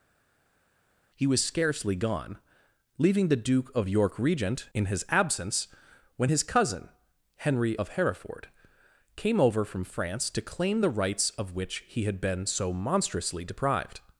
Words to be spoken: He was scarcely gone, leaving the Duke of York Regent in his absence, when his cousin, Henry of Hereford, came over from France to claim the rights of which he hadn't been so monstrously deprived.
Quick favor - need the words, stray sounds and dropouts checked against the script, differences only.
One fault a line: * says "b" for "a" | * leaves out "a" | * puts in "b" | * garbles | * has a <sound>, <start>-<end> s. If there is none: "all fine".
* says "had" for "hadn't"